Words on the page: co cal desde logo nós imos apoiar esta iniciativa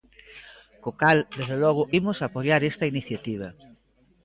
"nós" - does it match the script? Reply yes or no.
no